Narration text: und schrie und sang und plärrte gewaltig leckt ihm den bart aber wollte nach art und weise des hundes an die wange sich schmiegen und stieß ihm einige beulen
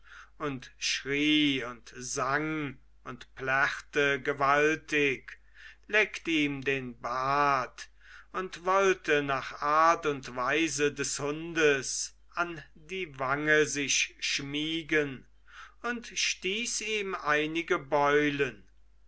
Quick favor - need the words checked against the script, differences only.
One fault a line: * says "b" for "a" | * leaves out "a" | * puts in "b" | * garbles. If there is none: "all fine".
* says "und" for "aber"